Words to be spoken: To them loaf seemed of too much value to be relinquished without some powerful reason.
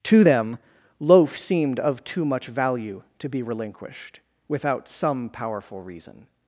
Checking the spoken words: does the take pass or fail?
pass